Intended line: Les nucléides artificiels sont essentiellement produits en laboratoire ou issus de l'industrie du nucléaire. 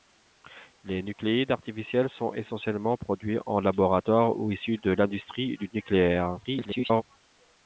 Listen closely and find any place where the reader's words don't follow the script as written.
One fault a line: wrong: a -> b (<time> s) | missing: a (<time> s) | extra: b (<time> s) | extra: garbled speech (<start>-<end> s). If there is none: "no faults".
extra: garbled speech (6.4-7.0 s)